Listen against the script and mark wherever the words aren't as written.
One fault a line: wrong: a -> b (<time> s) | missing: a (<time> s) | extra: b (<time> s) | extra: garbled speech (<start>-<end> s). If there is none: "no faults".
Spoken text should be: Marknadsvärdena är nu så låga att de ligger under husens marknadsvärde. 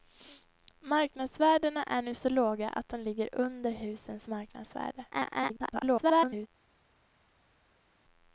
extra: garbled speech (5.1-6.5 s)